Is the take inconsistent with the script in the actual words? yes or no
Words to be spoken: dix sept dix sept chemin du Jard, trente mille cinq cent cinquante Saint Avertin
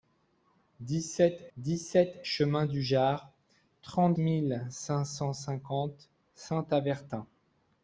no